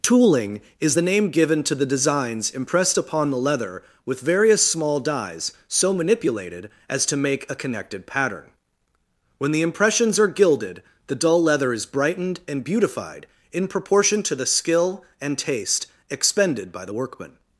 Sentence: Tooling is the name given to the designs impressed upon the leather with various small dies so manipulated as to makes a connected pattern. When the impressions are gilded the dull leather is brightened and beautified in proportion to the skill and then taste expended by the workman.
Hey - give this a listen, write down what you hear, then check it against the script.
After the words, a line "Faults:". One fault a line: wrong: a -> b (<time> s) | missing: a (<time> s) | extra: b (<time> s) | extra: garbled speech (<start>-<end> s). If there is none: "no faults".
Tooling is the name given to the designs impressed upon the leather with various small dies so manipulated as to make a connected pattern. When the impressions are gilded the dull leather is brightened and beautified in proportion to the skill and taste expended by the workman.
Faults:
wrong: makes -> make (7.2 s)
missing: then (15.4 s)